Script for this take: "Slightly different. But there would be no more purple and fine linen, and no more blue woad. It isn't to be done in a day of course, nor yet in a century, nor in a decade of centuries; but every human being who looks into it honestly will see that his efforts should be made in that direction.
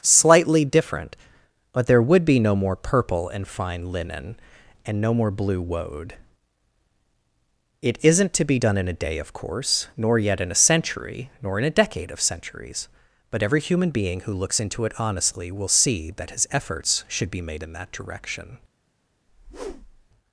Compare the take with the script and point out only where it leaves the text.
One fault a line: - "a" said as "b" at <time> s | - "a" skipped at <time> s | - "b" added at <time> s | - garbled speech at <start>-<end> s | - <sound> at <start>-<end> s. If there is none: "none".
- whoosh at 19.3-20.1 s